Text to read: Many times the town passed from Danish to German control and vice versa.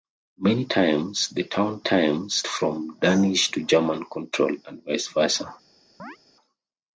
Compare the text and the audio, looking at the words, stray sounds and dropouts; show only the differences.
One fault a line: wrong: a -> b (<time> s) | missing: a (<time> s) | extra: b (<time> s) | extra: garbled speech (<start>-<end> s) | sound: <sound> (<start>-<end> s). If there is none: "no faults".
wrong: passed -> times (1.8 s)
sound: chirp (6.0-6.2 s)